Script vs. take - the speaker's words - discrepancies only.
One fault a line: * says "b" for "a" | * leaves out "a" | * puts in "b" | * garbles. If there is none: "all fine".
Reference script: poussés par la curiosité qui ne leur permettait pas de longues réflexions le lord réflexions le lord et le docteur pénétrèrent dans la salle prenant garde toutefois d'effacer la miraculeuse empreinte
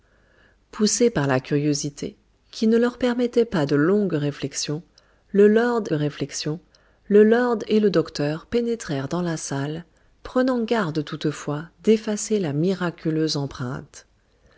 all fine